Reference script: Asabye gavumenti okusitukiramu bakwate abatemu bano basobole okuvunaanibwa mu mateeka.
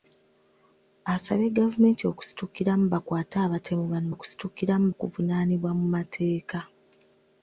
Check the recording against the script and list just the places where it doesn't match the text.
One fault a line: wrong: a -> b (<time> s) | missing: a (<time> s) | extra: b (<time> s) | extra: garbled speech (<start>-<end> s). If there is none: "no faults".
wrong: basobole -> okusitukiramu (4.1 s)